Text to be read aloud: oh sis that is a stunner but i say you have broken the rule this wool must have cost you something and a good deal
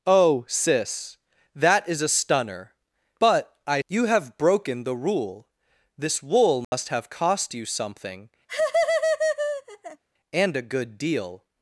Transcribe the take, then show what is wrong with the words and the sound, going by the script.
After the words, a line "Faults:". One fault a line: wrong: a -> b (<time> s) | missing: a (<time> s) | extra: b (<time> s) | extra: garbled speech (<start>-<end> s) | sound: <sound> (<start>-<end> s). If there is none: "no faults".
oh sis that is a stunner but i you have broken the rule this wool must have cost you something and a good deal
Faults:
missing: say (3.8 s)
sound: dropout (6.6-6.7 s)
sound: laugh (8.5-10.0 s)